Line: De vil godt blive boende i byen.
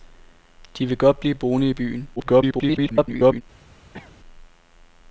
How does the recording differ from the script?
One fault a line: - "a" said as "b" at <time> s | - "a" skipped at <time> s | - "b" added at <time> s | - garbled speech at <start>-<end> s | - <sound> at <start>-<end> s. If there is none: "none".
- garbled speech at 2.2-3.4 s
- cough at 3.9-4.2 s